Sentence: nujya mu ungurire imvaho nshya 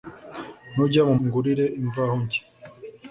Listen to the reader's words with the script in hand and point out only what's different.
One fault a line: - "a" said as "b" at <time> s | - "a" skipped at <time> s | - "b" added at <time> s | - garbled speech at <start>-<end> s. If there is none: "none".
none